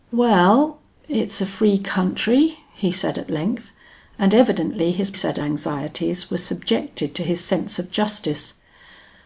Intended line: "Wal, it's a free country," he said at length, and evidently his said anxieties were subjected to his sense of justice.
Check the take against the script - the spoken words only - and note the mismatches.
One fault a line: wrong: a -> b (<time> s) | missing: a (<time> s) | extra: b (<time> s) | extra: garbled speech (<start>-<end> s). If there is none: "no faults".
no faults